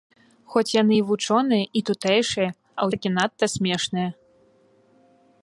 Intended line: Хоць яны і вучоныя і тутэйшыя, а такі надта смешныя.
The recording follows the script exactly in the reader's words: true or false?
true